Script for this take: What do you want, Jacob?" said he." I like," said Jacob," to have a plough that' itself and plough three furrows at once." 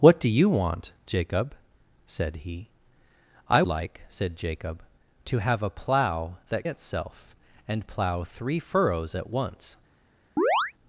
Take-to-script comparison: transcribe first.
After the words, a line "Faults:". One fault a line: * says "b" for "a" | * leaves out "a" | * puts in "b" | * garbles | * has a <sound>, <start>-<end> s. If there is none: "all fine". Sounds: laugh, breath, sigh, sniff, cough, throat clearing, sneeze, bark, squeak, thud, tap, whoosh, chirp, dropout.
What do you want, Jacob?" said he." I like," said Jacob," to have a plough that' itself and plough three furrows at once."
Faults:
* has a chirp, 10.4-10.7 s